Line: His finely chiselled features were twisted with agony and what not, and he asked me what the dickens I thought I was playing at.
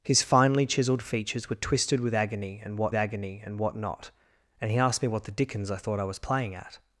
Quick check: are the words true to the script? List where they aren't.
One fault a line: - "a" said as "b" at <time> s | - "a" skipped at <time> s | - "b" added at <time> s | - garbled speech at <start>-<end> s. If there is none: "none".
- "agony and what" added at 2.9 s